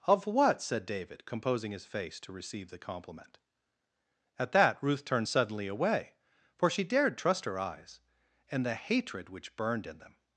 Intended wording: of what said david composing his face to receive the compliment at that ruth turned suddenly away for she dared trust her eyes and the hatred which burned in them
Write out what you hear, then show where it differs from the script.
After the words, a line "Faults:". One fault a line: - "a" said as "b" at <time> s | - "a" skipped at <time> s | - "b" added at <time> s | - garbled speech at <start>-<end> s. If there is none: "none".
of what said david composing his face to receive the compliment at that ruth turned suddenly away for she dared trust her eyes and the hatred which burned in them
Faults:
none